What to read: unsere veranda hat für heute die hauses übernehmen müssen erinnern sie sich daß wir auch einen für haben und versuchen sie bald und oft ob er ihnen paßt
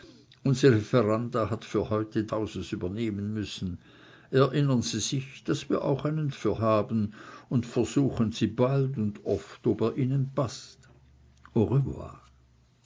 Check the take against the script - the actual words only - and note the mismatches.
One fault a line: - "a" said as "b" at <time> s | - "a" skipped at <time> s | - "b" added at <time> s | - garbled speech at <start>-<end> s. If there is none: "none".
none